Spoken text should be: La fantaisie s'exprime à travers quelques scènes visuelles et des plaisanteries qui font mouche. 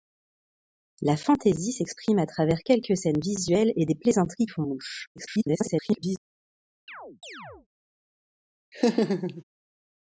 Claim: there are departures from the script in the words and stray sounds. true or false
true